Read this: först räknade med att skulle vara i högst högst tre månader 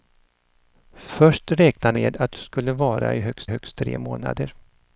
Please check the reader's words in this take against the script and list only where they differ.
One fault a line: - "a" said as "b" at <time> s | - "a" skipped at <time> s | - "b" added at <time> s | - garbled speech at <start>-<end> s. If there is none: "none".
none